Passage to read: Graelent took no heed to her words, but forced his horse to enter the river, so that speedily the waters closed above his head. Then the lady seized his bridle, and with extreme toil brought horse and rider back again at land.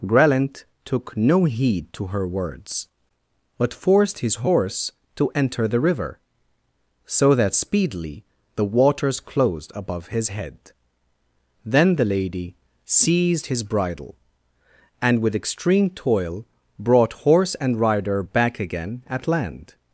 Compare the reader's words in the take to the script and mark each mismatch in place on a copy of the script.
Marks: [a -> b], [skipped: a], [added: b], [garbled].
Graelent took no heed to her words, but forced his horse to enter the river, so that speedily the waters closed above his head. Then the lady seized his bridle, and with extreme toil brought horse and rider back again at land.